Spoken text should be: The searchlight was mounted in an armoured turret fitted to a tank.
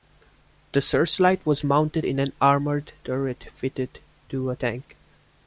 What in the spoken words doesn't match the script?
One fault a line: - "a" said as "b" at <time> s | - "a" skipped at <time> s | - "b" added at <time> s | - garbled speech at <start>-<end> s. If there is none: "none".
none